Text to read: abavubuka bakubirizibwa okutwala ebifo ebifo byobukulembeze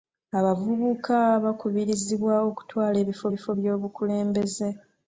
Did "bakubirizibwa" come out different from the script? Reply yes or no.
no